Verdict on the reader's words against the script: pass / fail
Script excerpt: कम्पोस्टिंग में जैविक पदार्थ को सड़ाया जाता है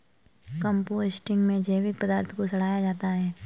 pass